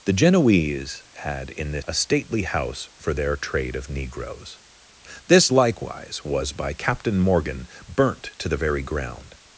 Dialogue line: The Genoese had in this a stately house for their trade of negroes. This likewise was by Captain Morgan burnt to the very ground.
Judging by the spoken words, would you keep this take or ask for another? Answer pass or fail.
pass